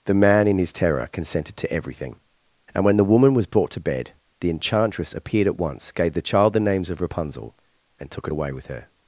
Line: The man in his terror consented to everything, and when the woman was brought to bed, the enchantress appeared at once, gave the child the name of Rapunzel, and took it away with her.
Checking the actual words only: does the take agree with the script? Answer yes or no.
no